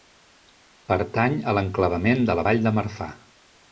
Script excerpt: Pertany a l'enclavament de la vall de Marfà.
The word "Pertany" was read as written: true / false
true